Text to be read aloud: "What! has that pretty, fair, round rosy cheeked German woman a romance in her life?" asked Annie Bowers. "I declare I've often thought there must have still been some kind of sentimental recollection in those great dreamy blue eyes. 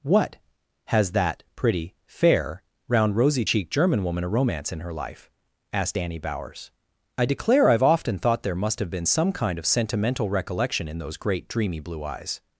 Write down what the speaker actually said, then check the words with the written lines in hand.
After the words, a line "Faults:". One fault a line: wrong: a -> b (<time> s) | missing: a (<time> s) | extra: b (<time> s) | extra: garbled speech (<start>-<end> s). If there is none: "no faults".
"What! has that pretty, fair, round rosy cheeked German woman a romance in her life?" asked Annie Bowers. "I declare I've often thought there must have been some kind of sentimental recollection in those great dreamy blue eyes.
Faults:
missing: still (8.9 s)